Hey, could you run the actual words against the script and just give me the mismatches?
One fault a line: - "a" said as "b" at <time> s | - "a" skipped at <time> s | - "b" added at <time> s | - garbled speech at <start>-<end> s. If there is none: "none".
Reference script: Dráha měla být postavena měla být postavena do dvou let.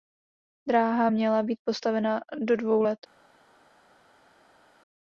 - "měla být postavena" skipped at 2.2 s